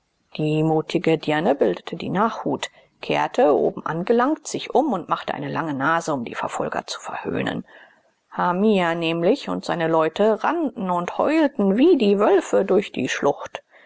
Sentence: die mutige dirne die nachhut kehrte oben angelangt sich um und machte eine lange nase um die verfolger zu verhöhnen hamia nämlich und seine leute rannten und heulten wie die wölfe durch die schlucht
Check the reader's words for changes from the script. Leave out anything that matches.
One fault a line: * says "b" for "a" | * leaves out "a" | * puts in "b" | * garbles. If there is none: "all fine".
* puts in "bildete"